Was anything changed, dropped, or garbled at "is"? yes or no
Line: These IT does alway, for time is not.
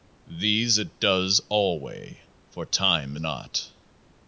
yes